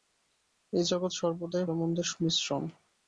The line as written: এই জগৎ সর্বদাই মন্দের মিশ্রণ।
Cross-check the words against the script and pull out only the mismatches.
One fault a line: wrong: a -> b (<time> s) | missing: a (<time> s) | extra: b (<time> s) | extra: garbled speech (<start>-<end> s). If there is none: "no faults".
no faults